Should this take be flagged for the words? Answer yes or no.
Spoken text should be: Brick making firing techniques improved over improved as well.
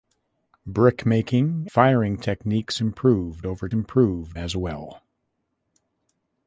no